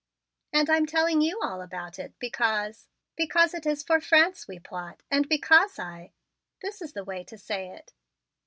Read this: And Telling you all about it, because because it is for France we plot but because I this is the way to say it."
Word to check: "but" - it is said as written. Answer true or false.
false